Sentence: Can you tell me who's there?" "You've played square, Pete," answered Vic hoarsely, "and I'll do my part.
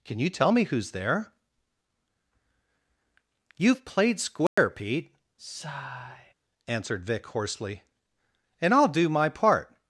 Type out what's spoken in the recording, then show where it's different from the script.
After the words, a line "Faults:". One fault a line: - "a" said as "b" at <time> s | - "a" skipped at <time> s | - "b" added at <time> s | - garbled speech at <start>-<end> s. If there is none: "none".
Can you tell me who's there?" "You've played square, Pete," answered Vic hoarsely, "and I'll do my part.
Faults:
none